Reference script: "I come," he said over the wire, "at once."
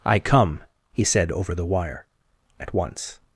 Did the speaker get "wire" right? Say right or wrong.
right